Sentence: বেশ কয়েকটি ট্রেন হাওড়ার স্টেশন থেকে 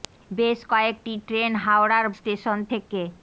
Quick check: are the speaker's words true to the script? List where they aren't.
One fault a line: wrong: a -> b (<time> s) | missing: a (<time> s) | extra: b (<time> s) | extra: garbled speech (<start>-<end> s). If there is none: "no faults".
no faults